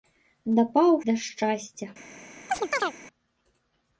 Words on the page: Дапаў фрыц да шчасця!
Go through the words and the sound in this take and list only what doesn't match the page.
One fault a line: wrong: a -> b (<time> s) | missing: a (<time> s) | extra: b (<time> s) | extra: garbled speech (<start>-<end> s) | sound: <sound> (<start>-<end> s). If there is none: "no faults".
missing: фрыц (0.9 s)
sound: chirp (2.5-2.9 s)